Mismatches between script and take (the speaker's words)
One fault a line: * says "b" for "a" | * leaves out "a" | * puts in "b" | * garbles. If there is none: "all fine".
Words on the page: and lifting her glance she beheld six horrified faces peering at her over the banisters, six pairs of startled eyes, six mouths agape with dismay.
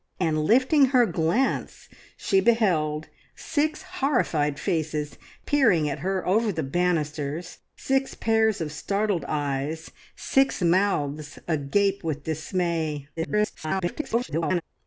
* garbles